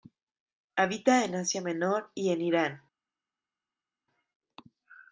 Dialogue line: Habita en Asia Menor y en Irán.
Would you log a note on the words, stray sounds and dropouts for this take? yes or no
no